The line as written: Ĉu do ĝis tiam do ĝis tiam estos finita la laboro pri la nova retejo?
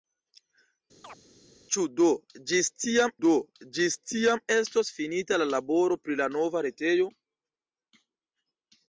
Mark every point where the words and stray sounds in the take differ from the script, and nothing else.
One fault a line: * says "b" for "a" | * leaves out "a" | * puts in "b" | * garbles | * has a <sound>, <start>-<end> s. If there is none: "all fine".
* has a chirp, 1.0-1.2 s